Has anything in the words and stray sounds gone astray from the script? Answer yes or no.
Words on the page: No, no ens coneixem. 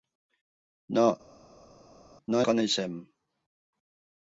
yes